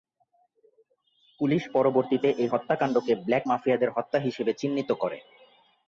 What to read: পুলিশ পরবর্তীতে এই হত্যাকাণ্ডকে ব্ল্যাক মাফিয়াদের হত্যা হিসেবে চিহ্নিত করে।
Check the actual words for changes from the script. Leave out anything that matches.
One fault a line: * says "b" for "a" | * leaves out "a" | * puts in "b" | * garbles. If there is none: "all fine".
all fine